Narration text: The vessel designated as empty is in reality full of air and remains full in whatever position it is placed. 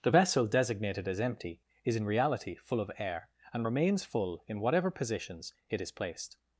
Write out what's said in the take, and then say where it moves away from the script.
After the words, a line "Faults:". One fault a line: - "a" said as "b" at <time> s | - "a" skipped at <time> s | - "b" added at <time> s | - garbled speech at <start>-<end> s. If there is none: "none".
The vessel designated as empty is in reality full of air and remains full in whatever positions it is placed.
Faults:
- "position" said as "positions" at 4.9 s